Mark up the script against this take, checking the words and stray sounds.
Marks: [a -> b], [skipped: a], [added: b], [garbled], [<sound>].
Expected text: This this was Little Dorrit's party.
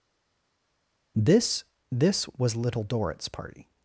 This this was Little Dorrit's party.